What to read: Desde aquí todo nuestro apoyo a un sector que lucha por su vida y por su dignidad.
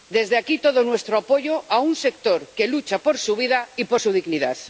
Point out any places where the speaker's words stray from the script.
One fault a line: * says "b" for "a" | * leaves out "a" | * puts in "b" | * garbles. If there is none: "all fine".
all fine